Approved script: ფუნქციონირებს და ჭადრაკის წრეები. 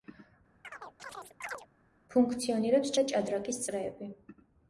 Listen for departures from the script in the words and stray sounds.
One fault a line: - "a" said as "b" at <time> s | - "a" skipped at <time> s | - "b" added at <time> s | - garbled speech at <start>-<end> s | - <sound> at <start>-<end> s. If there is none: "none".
- chirp at 0.6-1.7 s